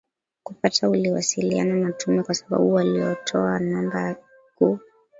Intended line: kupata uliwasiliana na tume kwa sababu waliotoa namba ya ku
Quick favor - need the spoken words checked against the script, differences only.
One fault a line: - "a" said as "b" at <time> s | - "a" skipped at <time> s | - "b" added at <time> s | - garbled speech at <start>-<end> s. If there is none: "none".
none